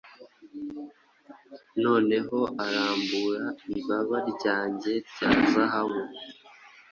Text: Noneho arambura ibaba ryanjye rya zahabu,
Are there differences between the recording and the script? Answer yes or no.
no